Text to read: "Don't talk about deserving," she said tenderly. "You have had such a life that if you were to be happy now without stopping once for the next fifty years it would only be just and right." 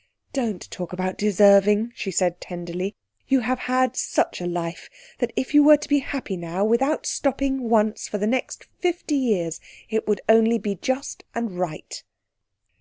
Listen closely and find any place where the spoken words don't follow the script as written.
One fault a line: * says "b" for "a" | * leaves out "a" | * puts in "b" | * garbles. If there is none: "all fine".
all fine